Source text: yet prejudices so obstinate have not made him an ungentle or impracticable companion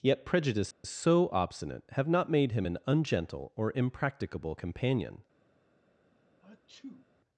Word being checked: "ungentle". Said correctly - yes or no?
yes